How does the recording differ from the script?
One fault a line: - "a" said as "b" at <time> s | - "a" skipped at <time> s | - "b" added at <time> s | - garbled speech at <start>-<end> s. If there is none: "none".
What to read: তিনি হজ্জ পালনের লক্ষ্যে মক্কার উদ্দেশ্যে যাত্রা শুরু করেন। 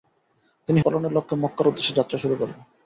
- "হজ্জ" skipped at 0.8 s